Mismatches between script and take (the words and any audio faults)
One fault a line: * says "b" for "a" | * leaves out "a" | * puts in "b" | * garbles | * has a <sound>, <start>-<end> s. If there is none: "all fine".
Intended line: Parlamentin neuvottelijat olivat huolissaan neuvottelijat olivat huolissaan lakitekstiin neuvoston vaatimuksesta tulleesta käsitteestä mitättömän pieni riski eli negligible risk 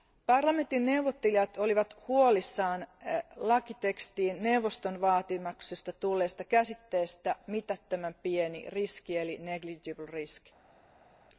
* leaves out "neuvottelijat olivat huolissaan"